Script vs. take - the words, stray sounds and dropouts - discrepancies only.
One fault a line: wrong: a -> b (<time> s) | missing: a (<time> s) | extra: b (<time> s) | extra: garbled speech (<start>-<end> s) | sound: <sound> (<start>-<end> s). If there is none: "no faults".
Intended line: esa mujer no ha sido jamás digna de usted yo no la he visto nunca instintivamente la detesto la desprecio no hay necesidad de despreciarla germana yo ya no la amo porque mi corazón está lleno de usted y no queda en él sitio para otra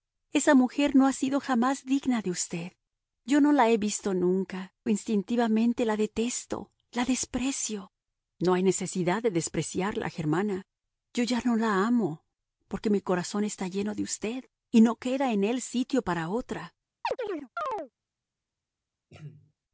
sound: chirp (17.0-17.9 s)
sound: throat clearing (19.1-19.5 s)